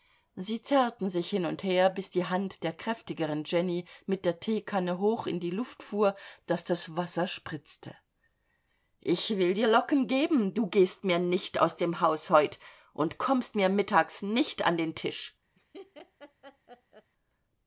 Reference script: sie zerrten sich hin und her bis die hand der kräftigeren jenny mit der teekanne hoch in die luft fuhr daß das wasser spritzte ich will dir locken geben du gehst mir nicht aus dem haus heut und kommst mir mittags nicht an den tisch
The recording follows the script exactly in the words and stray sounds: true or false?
false